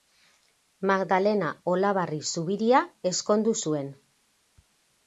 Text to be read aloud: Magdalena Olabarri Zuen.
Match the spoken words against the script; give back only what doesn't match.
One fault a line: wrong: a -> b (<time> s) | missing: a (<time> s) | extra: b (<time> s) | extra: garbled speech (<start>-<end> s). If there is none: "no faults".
extra: Zubiria ezkondu (2.3 s)